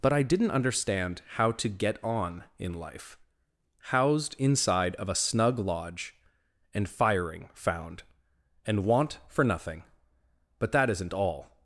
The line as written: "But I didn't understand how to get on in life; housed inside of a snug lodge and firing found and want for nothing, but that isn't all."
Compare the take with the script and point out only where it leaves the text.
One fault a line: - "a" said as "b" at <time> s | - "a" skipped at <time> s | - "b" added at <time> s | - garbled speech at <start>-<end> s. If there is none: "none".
none